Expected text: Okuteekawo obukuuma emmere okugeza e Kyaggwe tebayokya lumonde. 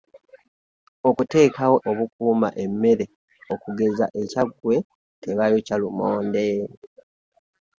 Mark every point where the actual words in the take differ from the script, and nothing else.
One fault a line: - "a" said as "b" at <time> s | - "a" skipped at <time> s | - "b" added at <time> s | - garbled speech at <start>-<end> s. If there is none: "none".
none